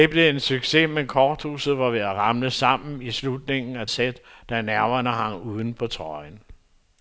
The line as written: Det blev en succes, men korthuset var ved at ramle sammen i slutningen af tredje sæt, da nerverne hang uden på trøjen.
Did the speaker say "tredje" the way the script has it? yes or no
no